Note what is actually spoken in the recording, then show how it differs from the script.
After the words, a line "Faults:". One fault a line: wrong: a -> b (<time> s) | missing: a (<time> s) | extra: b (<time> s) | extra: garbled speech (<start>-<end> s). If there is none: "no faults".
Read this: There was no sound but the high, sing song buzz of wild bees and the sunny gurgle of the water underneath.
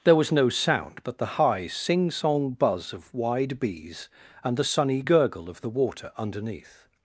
There was no sound but the high, sing song buzz of wide bees and the sunny gurgle of the water underneath.
Faults:
wrong: wild -> wide (3.1 s)